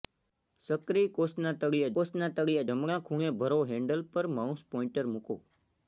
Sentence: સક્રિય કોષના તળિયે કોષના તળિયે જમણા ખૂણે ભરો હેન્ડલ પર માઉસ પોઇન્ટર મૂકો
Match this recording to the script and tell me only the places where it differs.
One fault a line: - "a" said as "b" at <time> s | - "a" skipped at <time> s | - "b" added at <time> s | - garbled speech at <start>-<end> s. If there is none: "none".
none